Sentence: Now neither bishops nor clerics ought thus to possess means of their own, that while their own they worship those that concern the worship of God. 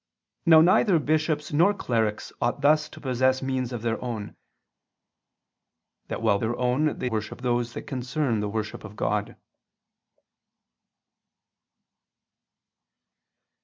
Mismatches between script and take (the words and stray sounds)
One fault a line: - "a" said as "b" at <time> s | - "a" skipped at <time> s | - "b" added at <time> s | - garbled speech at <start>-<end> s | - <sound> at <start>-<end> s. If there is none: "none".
none